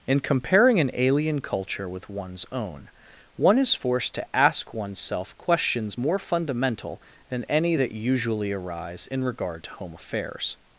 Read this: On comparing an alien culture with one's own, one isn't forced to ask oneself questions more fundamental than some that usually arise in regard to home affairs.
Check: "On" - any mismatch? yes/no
yes